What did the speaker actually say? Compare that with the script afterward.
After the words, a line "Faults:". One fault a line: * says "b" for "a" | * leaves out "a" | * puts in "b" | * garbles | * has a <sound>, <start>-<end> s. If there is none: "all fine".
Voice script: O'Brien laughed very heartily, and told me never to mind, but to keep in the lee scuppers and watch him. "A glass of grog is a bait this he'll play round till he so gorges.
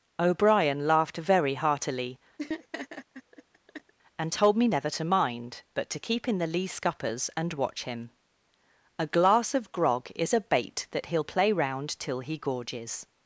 O'Brien laughed very heartily, and told me never to mind, but to keep in the lee scuppers and watch him. "A glass of grog is a bait that he'll play round till he gorges.
Faults:
* has a laugh, 2.4-3.9 s
* says "that" for "this"
* leaves out "so"